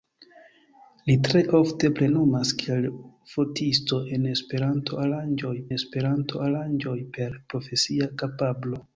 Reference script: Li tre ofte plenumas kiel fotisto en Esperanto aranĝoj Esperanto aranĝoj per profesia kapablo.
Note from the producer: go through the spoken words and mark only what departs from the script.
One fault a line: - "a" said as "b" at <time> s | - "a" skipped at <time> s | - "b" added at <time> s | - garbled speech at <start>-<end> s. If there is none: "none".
none